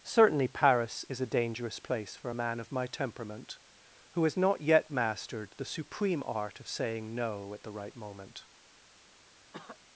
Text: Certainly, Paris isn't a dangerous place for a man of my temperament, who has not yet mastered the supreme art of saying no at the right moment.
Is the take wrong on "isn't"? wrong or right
wrong